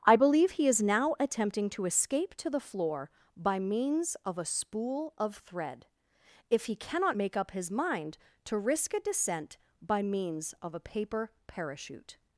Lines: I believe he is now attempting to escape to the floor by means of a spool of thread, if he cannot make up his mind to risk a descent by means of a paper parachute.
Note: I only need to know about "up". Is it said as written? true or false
true